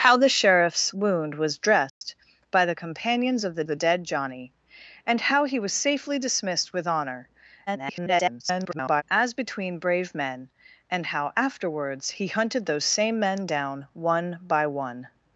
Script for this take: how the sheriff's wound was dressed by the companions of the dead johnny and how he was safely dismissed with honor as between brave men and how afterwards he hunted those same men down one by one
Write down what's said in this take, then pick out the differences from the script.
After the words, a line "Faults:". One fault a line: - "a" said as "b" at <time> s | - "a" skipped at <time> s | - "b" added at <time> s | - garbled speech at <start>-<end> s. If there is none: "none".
how the sheriff's wound was dressed by the companions of the the dead johnny and how he was safely dismissed with honor [garbled] as between brave men and how afterwards he hunted those same men down one by one
Faults:
- "the" added at 3.6 s
- garbled speech at 7.7-9.0 s